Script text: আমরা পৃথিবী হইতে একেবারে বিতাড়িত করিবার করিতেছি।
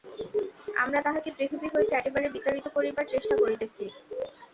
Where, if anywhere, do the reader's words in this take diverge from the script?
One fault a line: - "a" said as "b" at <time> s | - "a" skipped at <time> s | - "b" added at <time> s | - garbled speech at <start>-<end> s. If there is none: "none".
- "তাহাকে" added at 1.0 s
- "চেষ্টা" added at 3.1 s